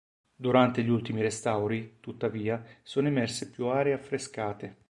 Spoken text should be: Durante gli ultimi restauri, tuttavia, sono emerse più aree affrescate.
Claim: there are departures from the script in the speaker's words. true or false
false